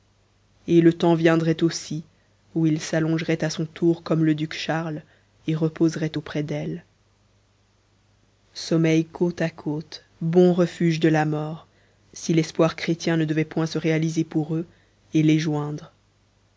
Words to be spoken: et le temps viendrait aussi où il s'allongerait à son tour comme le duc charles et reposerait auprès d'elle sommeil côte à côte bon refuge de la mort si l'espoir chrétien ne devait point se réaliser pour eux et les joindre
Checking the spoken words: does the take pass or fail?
pass